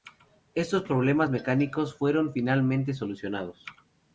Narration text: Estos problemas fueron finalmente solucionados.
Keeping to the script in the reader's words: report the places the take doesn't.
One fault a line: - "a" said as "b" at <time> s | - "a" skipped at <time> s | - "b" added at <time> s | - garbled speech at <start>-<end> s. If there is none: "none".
- "mecánicos" added at 1.3 s